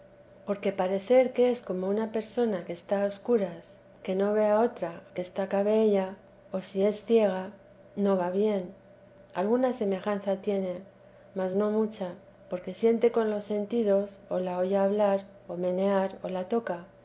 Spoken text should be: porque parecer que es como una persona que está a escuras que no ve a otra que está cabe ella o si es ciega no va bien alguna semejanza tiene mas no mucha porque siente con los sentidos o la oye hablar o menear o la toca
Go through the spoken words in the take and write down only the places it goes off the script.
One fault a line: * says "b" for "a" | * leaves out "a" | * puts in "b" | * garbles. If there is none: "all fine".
all fine